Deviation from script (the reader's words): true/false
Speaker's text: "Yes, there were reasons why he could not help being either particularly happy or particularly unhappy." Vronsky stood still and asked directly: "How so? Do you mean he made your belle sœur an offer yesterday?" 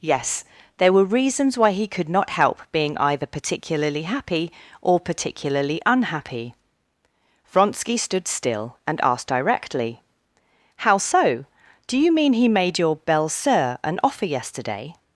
false